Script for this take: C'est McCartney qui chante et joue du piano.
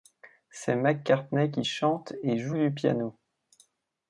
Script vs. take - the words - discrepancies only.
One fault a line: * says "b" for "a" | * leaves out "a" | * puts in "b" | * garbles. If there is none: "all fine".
all fine